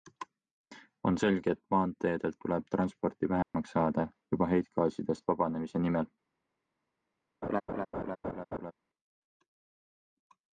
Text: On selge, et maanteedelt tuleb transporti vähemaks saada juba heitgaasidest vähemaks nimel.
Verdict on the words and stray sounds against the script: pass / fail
fail